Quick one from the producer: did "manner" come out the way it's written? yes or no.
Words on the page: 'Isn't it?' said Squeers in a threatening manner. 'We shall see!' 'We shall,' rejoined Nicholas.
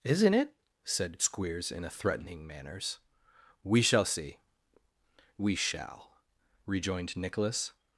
no